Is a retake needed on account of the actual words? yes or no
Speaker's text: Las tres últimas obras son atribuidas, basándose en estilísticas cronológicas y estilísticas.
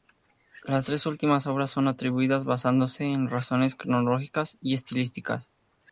yes